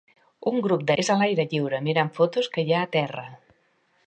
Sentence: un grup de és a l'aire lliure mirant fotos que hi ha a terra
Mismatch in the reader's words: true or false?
false